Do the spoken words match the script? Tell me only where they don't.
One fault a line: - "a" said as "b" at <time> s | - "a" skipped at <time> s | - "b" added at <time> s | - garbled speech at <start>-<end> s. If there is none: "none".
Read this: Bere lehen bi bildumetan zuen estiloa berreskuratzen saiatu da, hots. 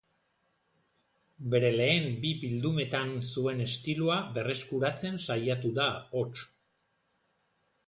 none